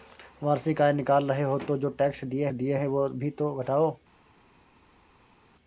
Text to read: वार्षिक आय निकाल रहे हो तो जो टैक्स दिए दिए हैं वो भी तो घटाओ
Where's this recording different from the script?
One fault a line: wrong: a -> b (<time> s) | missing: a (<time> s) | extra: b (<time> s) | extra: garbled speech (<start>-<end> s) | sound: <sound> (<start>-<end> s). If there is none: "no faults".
no faults